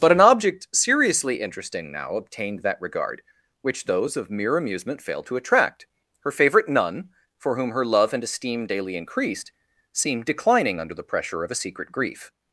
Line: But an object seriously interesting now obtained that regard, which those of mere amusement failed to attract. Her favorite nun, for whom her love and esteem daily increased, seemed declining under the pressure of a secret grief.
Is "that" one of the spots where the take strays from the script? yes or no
no